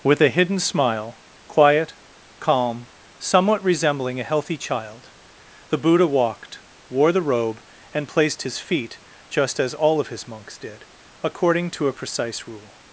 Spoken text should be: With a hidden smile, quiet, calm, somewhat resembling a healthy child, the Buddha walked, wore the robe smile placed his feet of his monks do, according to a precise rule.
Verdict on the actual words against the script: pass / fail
fail